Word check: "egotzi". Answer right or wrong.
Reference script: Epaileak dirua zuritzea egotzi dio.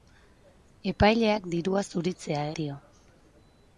wrong